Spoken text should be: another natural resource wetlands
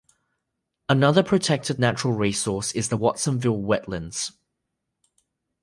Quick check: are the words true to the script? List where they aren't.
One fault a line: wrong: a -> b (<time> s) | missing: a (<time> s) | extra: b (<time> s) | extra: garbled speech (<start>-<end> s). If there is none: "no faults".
extra: protected (1.2 s)
extra: is the watsonville (2.7 s)